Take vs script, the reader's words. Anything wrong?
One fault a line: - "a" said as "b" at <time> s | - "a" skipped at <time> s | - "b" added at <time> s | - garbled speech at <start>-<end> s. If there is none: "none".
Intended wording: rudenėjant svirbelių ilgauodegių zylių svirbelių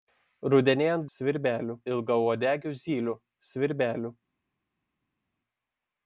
none